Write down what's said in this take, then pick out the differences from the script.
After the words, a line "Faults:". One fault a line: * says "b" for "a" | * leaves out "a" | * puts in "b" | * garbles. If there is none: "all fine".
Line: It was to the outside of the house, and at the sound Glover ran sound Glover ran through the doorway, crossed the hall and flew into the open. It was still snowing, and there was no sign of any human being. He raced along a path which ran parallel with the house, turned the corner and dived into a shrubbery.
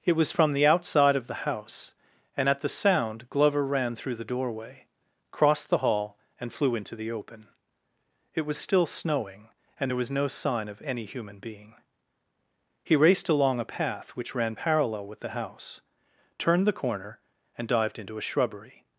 It was from the outside of the house, and at the sound Glover ran through the doorway, crossed the hall and flew into the open. It was still snowing, and there was no sign of any human being. He raced along a path which ran parallel with the house, turned the corner and dived into a shrubbery.
Faults:
* says "from" for "to"
* leaves out "sound Glover ran"